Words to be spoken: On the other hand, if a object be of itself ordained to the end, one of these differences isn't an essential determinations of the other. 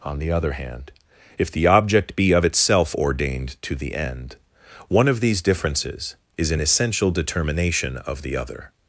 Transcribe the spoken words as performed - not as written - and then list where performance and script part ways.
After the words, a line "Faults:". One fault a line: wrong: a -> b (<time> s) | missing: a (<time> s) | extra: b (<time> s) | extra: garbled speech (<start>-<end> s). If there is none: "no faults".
On the other hand, if the object be of itself ordained to the end, one of these differences is an essential determination of the other.
Faults:
wrong: a -> the (1.5 s)
wrong: isn't -> is (6.4 s)
wrong: determinations -> determination (7.1 s)